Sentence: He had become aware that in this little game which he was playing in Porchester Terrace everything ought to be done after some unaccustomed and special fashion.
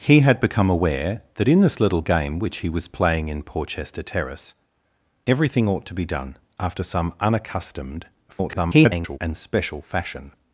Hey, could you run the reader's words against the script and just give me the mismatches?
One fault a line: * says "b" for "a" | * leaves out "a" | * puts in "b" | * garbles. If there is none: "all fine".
* garbles